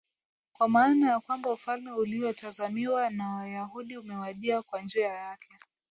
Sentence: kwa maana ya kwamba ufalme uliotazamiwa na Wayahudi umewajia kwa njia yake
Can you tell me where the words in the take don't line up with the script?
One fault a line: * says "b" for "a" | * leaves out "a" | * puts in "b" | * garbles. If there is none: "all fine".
all fine